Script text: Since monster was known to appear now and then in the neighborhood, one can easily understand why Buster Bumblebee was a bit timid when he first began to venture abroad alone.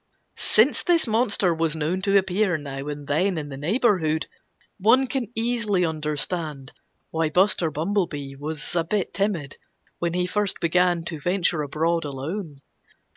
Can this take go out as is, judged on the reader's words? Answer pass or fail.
fail